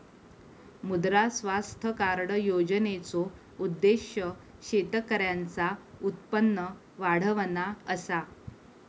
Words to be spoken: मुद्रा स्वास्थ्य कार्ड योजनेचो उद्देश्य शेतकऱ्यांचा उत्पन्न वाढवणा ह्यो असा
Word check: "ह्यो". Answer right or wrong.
wrong